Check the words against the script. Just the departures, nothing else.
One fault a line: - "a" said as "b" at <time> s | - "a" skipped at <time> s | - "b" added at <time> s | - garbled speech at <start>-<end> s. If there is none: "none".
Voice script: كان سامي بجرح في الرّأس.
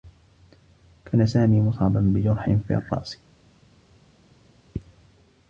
- "مصابا" added at 1.6 s